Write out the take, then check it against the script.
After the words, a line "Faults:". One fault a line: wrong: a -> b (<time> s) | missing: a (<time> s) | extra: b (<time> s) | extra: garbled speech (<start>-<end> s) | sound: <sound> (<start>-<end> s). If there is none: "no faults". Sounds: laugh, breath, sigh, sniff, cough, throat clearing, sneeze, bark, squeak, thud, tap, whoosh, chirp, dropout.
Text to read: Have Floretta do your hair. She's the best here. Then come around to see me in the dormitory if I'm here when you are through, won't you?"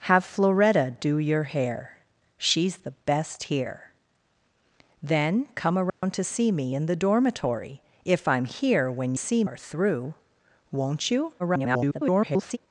Have Floretta do your hair. She's the best here. Then come around to see me in the dormitory if I'm here when see are through, won't you?" [garbled]
Faults:
sound: dropout (5.9-6.0 s)
wrong: you -> see (9.2 s)
extra: garbled speech (11.4-12.6 s)